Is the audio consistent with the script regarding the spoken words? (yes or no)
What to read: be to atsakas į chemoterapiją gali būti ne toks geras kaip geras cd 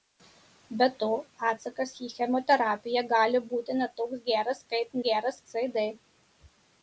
yes